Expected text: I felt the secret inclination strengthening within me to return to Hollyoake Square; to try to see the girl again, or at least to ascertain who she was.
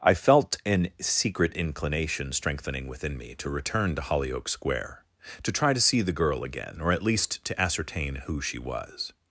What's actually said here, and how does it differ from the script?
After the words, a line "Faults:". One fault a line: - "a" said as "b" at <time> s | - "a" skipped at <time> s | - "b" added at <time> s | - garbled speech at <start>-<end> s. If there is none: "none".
I felt an secret inclination strengthening within me to return to Hollyoake Square; to try to see the girl again, or at least to ascertain who she was.
Faults:
- "the" said as "an" at 0.7 s